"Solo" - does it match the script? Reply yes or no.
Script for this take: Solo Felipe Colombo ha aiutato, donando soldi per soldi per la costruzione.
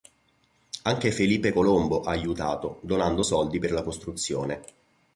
no